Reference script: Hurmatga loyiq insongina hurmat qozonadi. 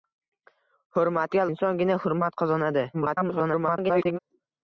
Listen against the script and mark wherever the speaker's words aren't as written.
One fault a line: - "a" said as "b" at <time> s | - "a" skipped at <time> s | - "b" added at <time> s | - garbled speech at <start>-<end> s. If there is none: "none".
- "loyiq" skipped at 1.4 s
- garbled speech at 2.9-4.2 s